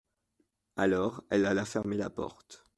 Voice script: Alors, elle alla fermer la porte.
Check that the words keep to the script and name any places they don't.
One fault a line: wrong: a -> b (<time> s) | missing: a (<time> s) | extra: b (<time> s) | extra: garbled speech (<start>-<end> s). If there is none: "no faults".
no faults